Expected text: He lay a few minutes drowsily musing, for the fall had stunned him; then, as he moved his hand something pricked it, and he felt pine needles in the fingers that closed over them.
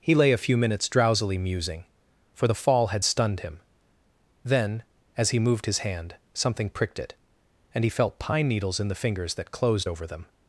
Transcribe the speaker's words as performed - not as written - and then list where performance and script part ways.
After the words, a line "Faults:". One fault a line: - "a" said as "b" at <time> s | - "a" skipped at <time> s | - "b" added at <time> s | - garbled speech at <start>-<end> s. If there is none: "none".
He lay a few minutes drowsily musing, for the fall had stunned him; then, as he moved his hand something pricked it, and he felt pine needles in the fingers that closed over them.
Faults:
none